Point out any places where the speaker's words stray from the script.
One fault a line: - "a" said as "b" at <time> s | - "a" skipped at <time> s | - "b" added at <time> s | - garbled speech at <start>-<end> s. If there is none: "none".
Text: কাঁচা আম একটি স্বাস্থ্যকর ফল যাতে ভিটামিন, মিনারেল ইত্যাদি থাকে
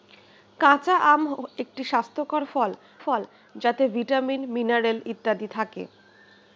- "ফল" added at 3.0 s